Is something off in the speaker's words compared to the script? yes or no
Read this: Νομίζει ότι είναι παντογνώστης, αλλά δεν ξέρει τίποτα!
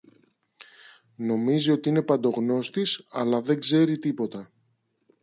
no